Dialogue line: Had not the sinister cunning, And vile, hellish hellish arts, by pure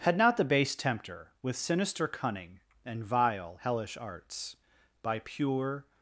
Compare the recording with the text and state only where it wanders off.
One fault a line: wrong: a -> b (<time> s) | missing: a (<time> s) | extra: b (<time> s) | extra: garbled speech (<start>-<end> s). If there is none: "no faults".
extra: base tempter with (0.4 s)
missing: hellish (4.0 s)